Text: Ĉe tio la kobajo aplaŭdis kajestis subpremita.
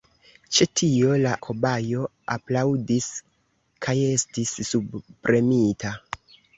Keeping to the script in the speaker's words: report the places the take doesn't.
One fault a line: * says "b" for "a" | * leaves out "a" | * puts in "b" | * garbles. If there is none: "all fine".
all fine